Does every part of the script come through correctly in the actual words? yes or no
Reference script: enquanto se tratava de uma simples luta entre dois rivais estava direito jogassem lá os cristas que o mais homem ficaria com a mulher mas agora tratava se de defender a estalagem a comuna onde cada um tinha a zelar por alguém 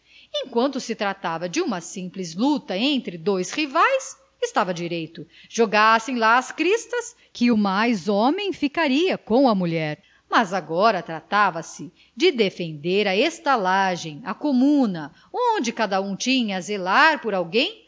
no